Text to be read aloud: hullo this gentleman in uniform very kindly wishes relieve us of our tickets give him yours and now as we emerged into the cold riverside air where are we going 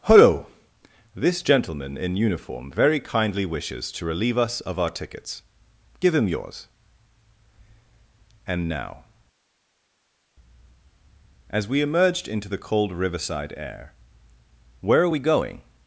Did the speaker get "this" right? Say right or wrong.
right